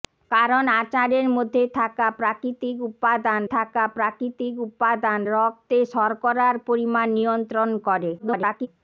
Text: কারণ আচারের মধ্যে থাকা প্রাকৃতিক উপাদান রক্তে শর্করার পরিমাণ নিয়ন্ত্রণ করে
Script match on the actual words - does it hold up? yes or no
no